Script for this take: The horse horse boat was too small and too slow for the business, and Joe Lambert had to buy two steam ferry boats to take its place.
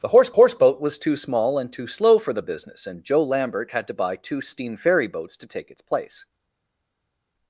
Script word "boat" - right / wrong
right